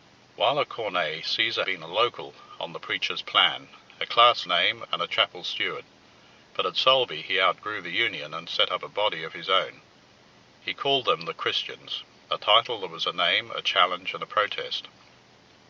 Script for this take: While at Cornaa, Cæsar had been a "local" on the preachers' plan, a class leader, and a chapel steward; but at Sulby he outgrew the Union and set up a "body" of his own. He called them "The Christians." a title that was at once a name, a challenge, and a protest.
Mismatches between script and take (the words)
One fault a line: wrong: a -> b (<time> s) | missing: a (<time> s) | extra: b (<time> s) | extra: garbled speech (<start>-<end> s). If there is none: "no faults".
missing: had (1.7 s)
wrong: leader -> name (4.4 s)
missing: at once (13.1 s)